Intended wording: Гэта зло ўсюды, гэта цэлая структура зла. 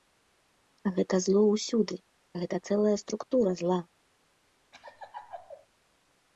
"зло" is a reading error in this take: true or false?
false